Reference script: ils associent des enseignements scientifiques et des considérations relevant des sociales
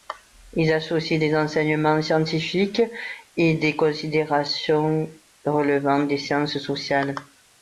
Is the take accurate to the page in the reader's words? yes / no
no